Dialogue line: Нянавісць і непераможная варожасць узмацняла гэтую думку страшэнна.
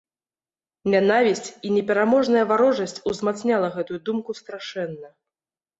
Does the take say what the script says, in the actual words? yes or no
yes